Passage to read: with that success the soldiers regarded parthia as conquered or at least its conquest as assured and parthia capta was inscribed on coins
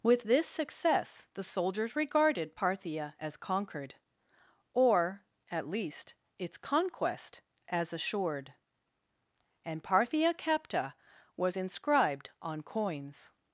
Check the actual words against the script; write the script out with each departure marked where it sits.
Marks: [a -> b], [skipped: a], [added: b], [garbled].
with [that -> this] success the soldiers regarded parthia as conquered or at least its conquest as assured and parthia capta was inscribed on coins